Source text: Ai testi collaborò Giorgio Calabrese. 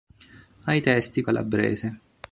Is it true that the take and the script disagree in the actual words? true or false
true